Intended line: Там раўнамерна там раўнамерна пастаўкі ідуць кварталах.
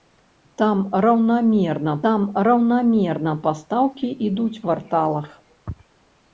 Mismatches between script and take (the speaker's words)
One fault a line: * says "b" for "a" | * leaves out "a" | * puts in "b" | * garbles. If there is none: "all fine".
all fine